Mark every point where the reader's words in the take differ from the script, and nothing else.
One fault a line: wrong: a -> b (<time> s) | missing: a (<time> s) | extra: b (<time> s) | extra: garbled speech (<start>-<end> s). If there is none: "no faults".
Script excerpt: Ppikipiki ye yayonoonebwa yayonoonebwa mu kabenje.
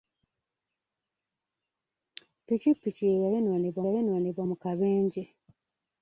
no faults